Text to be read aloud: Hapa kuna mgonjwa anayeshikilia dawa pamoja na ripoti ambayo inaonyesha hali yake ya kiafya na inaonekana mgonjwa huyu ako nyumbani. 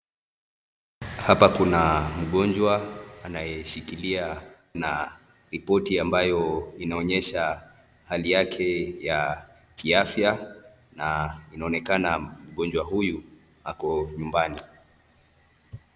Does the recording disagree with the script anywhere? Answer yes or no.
yes